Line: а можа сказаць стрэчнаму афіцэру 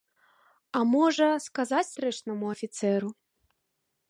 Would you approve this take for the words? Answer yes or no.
yes